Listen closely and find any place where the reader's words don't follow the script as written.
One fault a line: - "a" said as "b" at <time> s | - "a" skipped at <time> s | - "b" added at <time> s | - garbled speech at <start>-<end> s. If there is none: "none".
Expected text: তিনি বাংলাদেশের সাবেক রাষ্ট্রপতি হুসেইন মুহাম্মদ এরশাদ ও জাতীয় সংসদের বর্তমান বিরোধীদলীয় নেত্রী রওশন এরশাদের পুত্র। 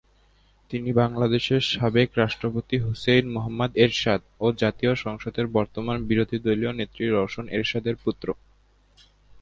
none